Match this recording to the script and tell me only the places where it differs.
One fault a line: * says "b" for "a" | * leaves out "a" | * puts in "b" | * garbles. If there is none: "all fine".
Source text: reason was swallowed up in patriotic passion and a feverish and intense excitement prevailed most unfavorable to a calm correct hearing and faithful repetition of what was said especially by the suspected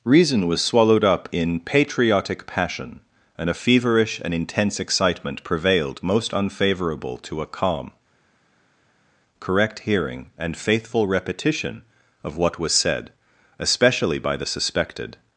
all fine